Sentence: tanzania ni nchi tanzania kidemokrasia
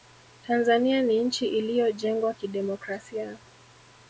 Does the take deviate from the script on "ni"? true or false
false